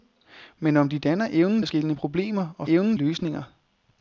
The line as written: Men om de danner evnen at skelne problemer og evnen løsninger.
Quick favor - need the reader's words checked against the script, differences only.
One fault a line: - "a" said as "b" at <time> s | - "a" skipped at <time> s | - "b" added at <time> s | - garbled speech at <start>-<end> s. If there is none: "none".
none